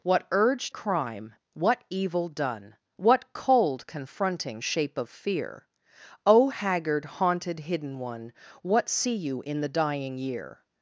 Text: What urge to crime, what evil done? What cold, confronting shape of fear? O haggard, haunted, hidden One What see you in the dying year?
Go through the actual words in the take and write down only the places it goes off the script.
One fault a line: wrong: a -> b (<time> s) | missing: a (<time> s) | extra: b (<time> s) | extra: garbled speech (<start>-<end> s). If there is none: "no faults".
missing: to (0.7 s)